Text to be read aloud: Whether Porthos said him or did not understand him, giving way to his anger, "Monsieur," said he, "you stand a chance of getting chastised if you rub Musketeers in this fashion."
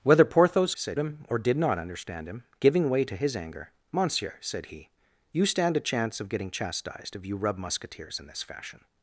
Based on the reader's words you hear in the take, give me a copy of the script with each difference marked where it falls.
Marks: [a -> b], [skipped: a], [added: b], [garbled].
Whether Porthos said him or did not understand him, giving way to his anger, "Monsieur," said he, "you stand a chance of getting chastised if you rub Musketeers in this fashion."